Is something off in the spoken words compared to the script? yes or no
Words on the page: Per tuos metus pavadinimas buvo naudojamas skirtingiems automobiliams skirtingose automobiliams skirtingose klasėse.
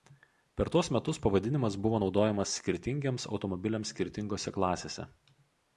yes